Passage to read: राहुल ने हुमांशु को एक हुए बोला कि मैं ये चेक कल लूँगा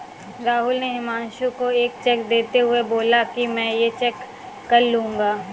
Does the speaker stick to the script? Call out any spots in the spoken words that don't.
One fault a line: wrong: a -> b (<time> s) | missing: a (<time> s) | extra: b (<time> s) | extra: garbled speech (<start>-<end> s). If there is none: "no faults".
extra: चेक देते (2.0 s)